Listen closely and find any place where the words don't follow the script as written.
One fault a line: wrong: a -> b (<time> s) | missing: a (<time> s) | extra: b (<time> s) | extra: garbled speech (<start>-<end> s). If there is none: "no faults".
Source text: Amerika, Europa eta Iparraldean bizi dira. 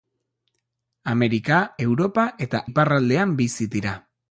no faults